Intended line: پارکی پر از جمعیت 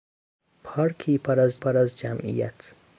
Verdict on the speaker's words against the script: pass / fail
fail